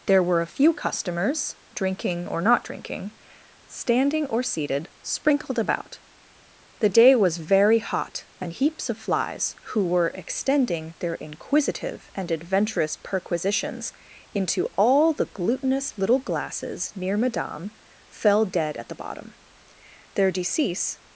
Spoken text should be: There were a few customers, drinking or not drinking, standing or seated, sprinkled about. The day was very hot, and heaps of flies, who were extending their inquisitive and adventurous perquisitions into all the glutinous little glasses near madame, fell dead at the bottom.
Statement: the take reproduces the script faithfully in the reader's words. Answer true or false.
false